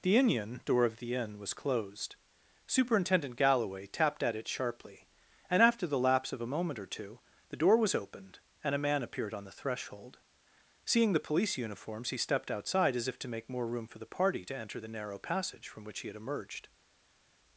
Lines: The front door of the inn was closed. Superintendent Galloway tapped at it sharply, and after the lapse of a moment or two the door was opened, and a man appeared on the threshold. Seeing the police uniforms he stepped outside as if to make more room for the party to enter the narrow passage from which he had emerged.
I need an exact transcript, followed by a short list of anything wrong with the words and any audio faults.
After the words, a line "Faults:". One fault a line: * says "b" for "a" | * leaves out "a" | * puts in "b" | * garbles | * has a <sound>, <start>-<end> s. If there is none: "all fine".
The inion door of the inn was closed. Superintendent Galloway tapped at it sharply, and after the lapse of a moment or two the door was opened, and a man appeared on the threshold. Seeing the police uniforms he stepped outside as if to make more room for the party to enter the narrow passage from which he had emerged.
Faults:
* says "inion" for "front"